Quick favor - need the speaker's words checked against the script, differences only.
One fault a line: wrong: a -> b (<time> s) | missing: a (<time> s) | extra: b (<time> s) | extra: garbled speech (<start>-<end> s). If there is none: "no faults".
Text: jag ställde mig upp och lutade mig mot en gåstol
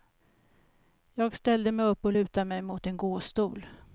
no faults